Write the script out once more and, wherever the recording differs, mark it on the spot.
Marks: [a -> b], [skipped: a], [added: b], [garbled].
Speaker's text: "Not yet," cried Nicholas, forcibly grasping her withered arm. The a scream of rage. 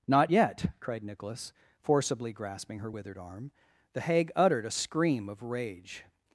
"Not yet," cried Nicholas, forcibly grasping her withered arm. The [added: hag uttered] a scream of rage.